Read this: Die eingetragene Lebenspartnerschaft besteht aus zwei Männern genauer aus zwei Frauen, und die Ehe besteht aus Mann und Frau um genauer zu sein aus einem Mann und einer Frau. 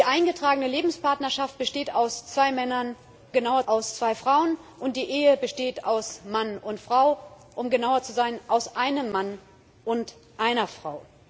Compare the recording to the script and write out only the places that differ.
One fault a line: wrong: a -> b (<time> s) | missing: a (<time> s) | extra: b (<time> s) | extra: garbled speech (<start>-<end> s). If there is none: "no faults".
no faults